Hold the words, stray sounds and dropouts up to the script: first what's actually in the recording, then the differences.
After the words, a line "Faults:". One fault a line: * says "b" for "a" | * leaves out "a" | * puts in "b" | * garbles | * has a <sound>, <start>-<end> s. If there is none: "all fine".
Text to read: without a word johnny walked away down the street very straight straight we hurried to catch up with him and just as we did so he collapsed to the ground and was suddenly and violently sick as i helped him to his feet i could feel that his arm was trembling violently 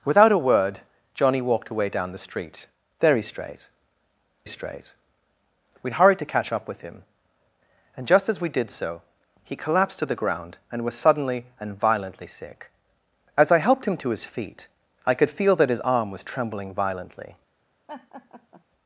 without a word johnny walked away down the street very straight straight we hurried to catch up with him and just as we did so he collapsed to the ground and was suddenly and violently sick as i helped him to his feet i could feel that his arm was trembling violently
Faults:
* has a laugh, 17.9-18.6 s